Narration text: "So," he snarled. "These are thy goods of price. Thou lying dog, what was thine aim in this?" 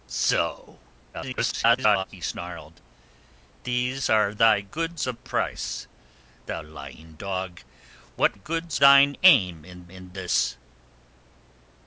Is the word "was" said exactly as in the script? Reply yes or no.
no